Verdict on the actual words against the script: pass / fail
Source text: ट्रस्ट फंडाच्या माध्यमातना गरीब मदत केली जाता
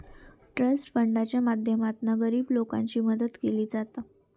fail